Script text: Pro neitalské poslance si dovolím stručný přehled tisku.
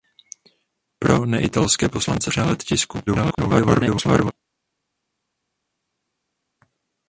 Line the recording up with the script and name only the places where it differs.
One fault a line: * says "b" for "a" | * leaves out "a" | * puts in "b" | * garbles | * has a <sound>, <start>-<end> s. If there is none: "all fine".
* leaves out "si dovolím stručný"
* garbles